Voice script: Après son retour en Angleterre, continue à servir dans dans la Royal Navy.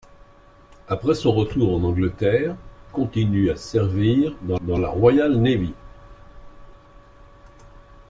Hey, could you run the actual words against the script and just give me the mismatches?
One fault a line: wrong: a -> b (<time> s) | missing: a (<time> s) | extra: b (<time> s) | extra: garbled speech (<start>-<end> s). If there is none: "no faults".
no faults